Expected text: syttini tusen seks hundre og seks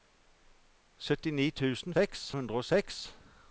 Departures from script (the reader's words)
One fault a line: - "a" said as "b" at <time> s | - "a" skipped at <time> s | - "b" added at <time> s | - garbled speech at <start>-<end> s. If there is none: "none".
none